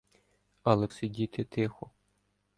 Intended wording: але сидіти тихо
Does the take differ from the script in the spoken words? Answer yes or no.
no